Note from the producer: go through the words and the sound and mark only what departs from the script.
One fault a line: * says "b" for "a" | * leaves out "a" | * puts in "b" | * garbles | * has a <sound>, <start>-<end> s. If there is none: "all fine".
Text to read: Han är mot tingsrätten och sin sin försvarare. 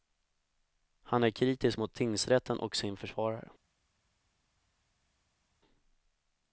* puts in "kritisk"
* leaves out "sin"